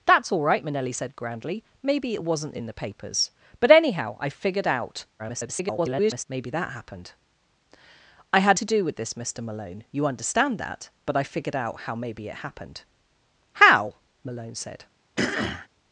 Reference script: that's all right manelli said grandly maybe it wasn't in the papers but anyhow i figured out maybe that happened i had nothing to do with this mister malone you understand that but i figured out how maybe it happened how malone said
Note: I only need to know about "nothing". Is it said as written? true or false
false